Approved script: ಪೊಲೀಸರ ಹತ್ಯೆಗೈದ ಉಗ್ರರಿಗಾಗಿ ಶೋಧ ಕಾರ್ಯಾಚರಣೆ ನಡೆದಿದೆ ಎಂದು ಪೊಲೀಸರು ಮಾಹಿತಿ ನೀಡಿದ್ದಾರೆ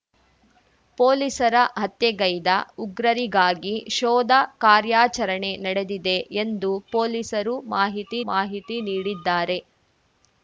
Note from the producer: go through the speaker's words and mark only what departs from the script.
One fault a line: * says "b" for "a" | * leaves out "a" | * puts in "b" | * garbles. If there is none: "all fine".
* puts in "ಮಾಹಿತಿ"